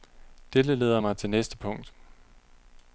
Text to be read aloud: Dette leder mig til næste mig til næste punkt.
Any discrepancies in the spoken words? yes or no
yes